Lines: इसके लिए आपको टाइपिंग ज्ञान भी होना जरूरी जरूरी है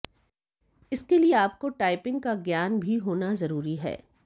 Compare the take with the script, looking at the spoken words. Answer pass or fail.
fail